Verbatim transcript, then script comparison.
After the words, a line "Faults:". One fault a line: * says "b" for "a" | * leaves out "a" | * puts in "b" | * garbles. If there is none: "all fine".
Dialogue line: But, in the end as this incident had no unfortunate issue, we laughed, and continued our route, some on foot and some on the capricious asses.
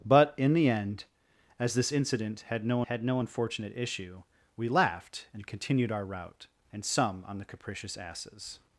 But, in the end as this incident had no had no unfortunate issue, we laughed, and continued our route, and some on the capricious asses.
Faults:
* puts in "had no"
* leaves out "some on foot"